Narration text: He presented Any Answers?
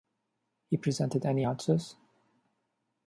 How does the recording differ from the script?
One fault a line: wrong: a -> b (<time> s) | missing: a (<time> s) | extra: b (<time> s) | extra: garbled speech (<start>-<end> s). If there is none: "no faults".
no faults